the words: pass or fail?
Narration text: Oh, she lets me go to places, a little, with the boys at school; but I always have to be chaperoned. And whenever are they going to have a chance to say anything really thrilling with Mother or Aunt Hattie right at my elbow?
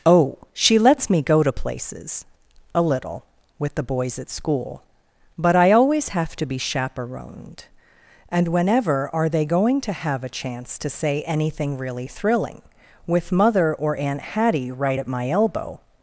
pass